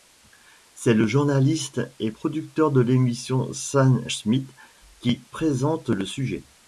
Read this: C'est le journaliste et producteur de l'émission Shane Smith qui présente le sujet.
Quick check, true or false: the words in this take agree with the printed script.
true